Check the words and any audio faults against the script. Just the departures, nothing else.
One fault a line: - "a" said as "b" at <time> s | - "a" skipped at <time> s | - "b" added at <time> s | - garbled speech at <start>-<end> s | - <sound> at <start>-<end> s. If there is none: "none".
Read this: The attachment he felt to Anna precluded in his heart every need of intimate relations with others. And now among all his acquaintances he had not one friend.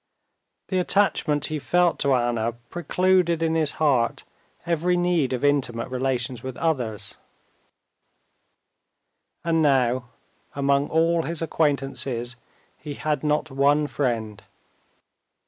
none